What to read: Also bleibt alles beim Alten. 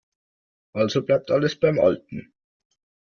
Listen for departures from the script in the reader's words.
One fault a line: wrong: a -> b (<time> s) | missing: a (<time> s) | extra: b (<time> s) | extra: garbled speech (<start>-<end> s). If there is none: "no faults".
no faults